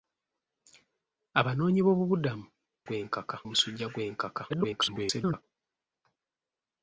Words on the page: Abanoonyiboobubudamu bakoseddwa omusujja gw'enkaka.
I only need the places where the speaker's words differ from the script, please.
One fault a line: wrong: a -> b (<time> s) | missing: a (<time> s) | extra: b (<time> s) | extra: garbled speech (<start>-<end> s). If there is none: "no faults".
wrong: bakoseddwa -> gw'enkaka (2.9 s)
extra: garbled speech (4.5-5.4 s)